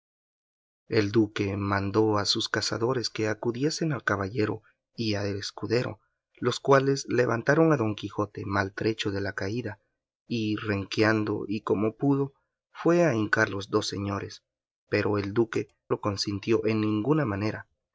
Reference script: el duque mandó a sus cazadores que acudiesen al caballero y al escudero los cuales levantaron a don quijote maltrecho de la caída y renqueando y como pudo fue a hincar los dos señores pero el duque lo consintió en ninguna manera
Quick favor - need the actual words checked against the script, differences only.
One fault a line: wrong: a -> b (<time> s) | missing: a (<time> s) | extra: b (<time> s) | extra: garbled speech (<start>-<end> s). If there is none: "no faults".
no faults